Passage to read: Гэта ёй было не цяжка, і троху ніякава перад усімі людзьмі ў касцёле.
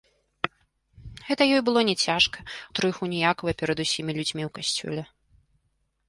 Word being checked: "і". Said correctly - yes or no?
yes